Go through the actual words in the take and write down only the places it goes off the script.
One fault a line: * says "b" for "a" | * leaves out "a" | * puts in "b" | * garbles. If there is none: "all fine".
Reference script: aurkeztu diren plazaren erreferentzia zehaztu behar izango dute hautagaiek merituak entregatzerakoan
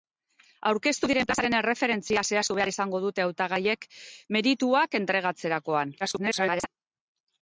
* garbles